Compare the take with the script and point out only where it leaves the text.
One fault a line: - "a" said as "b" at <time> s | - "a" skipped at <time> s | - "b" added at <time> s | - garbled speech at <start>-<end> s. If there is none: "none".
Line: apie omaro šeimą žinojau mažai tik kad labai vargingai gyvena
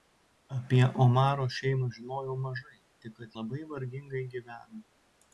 none